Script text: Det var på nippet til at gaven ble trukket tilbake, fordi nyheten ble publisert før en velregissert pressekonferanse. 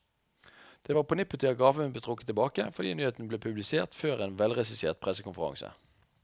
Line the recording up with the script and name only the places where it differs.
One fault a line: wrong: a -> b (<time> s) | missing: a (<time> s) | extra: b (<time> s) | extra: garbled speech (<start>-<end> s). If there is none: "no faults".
no faults